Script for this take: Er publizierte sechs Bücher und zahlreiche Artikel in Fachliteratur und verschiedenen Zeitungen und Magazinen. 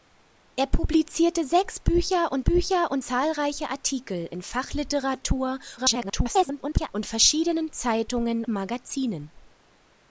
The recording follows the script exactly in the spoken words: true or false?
false